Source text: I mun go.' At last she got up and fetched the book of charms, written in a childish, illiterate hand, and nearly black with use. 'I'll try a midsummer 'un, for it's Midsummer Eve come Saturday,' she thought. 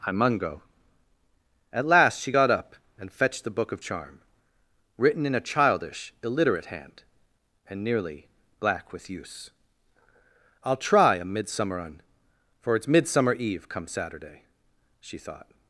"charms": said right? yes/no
no